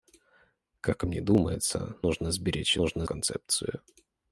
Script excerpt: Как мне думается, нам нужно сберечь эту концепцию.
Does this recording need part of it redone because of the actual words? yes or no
yes